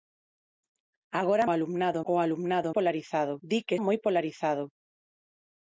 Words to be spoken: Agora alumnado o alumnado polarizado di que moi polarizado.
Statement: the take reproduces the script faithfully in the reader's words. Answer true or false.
true